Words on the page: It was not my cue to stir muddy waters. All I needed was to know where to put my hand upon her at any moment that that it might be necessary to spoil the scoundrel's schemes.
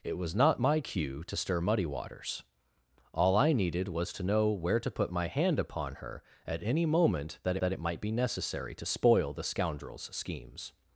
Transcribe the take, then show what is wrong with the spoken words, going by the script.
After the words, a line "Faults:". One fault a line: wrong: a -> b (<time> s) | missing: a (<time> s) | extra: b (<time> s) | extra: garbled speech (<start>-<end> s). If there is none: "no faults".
It was not my cue to stir muddy waters. All I needed was to know where to put my hand upon her at any moment that that it might be necessary to spoil the scoundrel's schemes.
Faults:
no faults